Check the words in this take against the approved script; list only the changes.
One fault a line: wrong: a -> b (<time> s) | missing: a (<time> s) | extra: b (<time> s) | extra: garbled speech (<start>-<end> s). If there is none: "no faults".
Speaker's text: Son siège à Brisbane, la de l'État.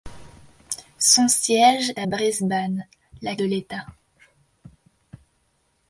no faults